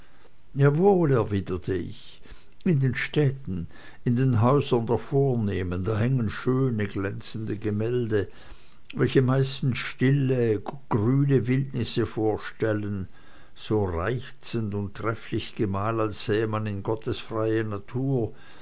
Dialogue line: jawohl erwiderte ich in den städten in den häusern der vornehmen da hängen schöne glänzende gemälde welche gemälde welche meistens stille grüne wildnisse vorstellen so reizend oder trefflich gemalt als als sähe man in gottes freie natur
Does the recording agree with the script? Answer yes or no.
no